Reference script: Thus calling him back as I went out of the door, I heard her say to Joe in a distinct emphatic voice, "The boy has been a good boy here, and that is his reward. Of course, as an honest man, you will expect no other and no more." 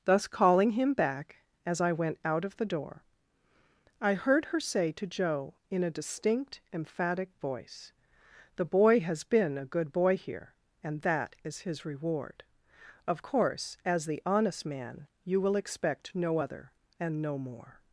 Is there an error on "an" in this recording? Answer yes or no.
yes